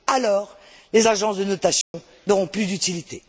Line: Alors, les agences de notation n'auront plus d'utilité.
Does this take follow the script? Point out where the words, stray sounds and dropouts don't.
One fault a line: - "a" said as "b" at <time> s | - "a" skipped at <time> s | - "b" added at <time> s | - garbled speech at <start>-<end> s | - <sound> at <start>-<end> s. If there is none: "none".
- dropout at 1.8-1.9 s